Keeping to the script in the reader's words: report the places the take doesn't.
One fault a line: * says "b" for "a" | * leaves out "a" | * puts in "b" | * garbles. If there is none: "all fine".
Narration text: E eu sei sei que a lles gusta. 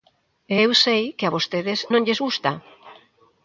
* leaves out "sei"
* puts in "vostedes non"